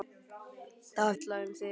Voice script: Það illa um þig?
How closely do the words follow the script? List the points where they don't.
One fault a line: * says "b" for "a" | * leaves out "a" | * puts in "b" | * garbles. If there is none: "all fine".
all fine